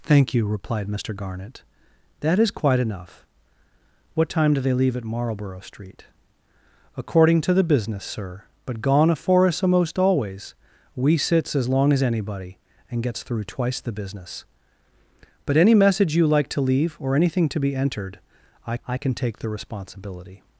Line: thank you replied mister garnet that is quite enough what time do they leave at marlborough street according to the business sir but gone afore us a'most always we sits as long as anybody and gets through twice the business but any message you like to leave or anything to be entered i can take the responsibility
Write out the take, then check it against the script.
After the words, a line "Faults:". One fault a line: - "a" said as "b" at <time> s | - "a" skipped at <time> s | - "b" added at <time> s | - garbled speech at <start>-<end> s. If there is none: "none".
thank you replied mister garnet that is quite enough what time do they leave at marlborough street according to the business sir but gone afore us a'most always we sits as long as anybody and gets through twice the business but any message you like to leave or anything to be entered i i can take the responsibility
Faults:
- "i" added at 18.9 s